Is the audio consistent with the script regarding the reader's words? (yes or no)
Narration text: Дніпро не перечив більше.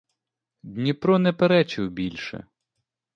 yes